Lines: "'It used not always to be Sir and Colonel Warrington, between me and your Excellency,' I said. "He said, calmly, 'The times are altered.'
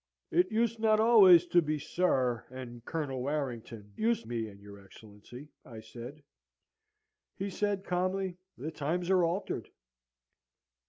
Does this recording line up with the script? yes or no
no